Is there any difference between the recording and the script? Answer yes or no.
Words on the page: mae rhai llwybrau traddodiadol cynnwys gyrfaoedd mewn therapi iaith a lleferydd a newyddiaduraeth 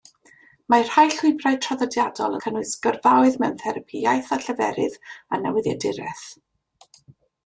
no